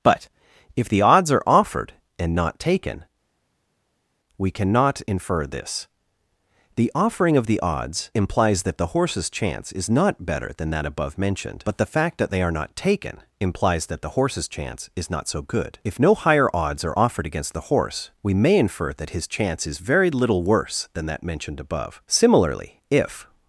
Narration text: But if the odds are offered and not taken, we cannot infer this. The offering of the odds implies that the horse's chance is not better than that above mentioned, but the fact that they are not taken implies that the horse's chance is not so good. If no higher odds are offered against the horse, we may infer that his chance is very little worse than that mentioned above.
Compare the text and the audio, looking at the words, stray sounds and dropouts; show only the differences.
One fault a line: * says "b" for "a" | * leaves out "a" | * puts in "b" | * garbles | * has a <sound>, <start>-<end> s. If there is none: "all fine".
* puts in "Similarly if"